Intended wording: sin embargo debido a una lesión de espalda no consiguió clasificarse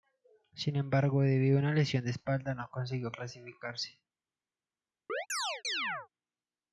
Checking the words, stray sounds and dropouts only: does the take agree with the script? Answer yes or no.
no